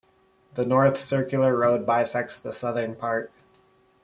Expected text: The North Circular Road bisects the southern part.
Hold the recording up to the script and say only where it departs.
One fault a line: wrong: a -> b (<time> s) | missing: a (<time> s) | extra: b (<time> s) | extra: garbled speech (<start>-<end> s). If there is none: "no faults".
no faults